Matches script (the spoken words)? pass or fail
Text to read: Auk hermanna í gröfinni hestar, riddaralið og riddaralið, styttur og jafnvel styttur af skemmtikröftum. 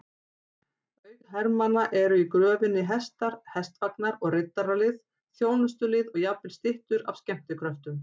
fail